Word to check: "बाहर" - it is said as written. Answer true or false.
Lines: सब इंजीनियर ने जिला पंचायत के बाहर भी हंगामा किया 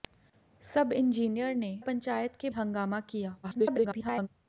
false